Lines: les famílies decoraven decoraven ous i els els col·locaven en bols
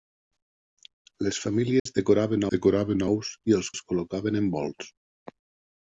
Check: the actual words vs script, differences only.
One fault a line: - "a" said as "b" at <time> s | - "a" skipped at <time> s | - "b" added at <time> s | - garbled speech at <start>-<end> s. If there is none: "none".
none